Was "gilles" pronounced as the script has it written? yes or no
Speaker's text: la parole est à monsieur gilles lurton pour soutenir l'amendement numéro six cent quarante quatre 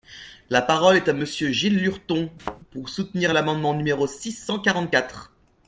yes